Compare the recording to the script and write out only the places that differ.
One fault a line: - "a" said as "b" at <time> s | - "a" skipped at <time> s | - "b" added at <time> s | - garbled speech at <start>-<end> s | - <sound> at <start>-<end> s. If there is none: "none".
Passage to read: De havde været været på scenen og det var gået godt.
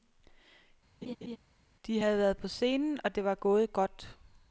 - laugh at 1.0-1.4 s
- "været" skipped at 2.4 s